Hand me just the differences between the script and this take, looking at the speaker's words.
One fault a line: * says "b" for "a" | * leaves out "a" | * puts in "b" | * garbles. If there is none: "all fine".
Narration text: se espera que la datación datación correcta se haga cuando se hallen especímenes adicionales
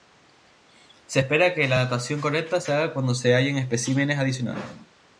* leaves out "datación"